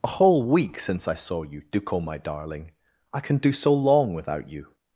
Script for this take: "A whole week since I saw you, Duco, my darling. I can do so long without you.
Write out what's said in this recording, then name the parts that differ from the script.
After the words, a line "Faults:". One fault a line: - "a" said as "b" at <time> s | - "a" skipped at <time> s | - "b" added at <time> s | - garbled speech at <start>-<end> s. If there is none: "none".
"A whole week since I saw you, Duco, my darling. I can do so long without you.
Faults:
none